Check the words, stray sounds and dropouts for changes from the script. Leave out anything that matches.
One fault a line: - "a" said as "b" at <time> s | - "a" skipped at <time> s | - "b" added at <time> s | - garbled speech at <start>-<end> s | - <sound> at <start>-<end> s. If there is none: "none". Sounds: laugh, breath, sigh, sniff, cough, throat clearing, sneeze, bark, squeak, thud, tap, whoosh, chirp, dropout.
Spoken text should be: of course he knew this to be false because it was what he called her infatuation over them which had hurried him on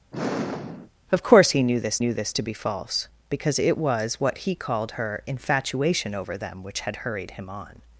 - sigh at 0.1-0.9 s
- "knew this" added at 2.0 s